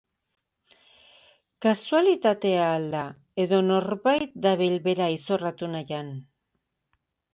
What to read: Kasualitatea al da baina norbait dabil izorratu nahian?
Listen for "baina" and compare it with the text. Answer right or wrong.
wrong